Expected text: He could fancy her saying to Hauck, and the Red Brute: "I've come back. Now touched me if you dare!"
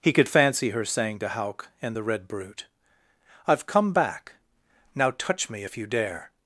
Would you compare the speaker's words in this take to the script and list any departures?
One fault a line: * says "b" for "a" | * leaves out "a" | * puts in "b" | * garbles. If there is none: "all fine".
* says "touch" for "touched"